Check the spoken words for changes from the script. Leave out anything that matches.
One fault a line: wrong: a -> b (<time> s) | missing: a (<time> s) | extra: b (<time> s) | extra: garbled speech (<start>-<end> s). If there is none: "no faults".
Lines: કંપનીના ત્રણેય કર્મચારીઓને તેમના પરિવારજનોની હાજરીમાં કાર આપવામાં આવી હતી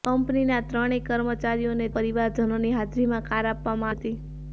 missing: તેમના (1.9 s)
missing: આવી (3.9 s)